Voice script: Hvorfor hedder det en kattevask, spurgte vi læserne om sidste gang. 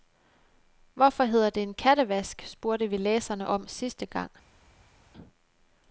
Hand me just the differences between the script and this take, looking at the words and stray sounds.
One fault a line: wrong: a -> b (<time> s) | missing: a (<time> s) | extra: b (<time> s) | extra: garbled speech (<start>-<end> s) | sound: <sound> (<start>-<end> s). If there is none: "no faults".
no faults